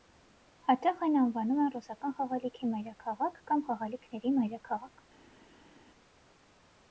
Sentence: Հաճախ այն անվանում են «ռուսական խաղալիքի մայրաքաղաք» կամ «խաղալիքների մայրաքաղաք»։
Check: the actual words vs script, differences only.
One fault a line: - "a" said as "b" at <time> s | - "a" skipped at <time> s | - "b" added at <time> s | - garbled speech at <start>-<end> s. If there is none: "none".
none